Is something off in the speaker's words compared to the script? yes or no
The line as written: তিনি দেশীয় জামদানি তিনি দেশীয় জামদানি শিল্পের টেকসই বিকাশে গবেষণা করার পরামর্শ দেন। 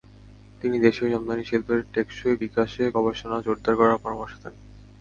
yes